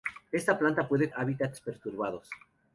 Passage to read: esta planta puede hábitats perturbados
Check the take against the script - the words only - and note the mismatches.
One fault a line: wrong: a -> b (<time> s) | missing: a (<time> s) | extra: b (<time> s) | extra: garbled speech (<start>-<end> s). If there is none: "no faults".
no faults